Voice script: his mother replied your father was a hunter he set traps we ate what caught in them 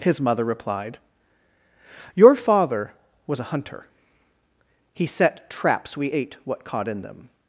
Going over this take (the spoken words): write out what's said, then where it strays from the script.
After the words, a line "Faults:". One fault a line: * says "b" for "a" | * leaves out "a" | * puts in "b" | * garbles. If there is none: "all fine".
his mother replied your father was a hunter he set traps we ate what caught in them
Faults:
all fine